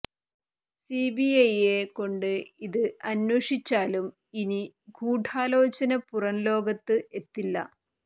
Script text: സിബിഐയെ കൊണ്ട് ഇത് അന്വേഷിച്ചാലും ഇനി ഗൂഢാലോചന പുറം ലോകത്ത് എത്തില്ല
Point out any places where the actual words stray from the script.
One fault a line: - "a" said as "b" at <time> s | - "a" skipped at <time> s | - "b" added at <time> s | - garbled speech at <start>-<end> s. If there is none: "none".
none